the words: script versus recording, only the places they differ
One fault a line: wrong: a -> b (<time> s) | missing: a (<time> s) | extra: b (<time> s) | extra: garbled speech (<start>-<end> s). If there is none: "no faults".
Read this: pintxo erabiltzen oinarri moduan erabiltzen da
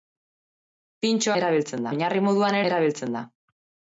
no faults